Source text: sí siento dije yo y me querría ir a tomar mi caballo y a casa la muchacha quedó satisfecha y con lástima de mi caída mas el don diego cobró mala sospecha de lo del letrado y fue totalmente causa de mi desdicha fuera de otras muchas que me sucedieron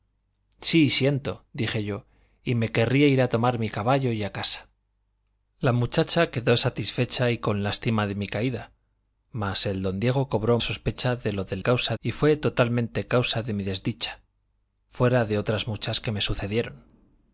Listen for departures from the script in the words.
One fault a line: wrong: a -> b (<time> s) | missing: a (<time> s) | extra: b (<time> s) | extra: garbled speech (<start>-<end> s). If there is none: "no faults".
missing: mala (10.6 s)
wrong: letrado -> causa (11.6 s)